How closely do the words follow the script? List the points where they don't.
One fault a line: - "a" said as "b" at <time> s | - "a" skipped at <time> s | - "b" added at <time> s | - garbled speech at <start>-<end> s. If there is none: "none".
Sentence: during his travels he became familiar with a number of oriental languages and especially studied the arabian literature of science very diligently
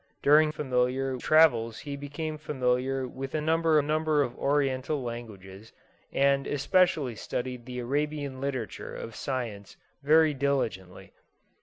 - "his" said as "familiar" at 0.5 s
- "number" added at 3.8 s